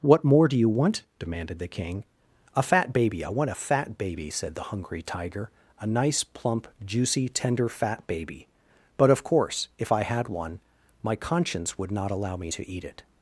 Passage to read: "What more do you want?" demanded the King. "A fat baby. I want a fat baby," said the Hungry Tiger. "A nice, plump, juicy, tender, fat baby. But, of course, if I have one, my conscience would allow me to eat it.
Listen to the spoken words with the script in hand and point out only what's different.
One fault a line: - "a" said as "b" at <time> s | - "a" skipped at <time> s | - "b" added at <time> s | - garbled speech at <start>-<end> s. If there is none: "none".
- "have" said as "had" at 10.0 s
- "not" added at 11.9 s